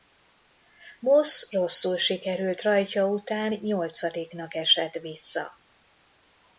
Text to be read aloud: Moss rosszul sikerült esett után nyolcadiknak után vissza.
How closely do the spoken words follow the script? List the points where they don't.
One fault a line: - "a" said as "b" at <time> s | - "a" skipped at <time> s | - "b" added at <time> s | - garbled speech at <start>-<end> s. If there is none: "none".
- "esett" said as "rajtja" at 2.6 s
- "után" said as "esett" at 4.6 s